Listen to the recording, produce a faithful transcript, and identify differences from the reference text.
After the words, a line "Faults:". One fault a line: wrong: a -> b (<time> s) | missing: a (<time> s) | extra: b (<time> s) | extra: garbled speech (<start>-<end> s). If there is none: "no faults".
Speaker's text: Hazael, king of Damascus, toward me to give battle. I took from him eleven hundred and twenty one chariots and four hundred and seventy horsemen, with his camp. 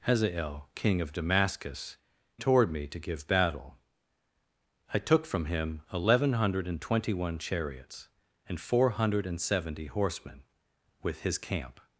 Hazael, king of Damascus, toward me to give battle. I took from him eleven hundred and twenty one chariots and four hundred and seventy horsemen, with his camp.
Faults:
no faults